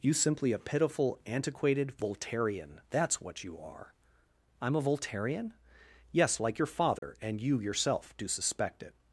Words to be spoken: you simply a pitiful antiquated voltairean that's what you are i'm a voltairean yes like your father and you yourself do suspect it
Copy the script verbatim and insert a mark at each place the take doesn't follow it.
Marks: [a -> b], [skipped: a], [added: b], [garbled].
you simply a pitiful antiquated voltairean that's what you are i'm a voltairean yes like your father and you yourself do suspect it